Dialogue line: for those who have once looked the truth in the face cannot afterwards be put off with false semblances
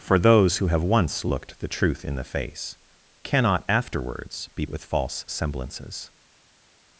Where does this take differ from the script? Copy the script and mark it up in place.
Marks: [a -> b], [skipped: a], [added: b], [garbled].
for those who have once looked the truth in the face cannot afterwards be [skipped: put off] with false semblances